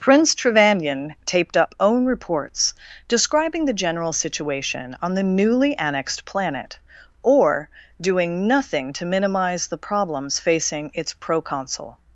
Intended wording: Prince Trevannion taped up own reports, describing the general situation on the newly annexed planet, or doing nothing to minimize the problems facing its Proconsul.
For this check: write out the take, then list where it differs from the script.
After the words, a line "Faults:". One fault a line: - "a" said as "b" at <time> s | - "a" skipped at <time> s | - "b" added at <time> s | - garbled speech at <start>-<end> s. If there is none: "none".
Prince Trevannion taped up own reports, describing the general situation on the newly annexed planet, or doing nothing to minimize the problems facing its Proconsul.
Faults:
none